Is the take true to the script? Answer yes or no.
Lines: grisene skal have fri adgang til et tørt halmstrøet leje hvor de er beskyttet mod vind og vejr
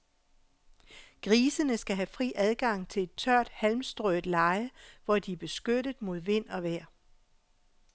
yes